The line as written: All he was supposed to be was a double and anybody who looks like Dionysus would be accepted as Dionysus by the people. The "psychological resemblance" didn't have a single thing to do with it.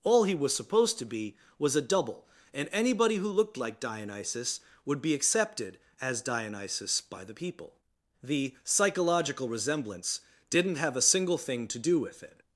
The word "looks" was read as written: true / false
false